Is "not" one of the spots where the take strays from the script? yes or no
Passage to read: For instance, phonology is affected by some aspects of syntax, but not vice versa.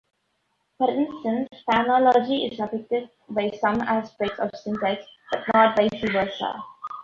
no